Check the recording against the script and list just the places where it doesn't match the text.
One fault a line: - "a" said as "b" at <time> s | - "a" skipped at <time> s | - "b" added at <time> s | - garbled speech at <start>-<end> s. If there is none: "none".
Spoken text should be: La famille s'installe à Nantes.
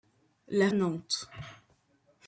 - "famille s'installe" skipped at 0.7 s